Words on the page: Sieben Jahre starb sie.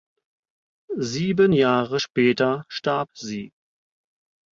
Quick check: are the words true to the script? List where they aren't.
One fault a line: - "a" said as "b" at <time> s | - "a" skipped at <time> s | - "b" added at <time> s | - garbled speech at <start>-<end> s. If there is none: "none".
- "später" added at 2.0 s